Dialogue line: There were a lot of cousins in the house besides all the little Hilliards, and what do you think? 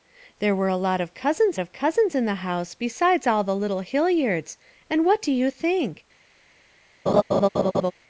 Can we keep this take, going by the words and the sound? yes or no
no